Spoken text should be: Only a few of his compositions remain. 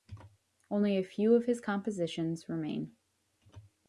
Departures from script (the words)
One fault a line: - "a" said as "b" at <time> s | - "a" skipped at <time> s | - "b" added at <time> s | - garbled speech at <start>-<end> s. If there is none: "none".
none